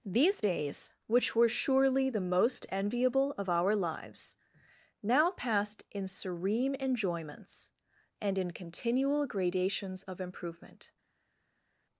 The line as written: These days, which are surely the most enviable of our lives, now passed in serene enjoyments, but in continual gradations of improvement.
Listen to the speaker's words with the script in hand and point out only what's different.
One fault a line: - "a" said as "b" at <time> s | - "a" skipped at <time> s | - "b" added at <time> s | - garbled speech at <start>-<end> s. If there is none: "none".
- "are" said as "were" at 1.3 s
- "but" said as "and" at 8.2 s